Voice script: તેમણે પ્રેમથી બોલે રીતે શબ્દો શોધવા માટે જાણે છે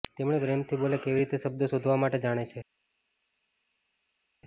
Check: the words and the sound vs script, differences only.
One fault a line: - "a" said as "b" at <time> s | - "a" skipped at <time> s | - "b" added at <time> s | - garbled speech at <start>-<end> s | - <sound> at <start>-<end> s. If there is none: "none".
- "કેવી" added at 1.0 s